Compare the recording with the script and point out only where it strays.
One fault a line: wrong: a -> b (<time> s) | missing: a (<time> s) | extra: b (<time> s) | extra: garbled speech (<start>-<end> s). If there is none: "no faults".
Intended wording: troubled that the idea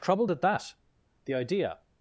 extra: at (0.3 s)